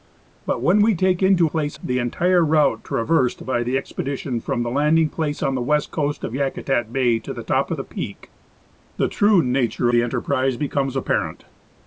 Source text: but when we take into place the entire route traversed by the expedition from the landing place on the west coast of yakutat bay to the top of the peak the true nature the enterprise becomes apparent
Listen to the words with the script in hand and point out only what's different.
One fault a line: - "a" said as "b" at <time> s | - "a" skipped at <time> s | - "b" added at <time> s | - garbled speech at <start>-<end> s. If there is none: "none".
none